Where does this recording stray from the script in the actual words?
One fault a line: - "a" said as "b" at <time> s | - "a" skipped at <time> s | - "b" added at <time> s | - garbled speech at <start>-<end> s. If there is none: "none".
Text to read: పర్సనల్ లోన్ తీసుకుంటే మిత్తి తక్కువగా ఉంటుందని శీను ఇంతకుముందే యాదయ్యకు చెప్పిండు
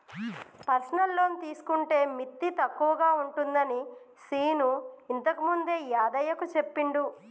none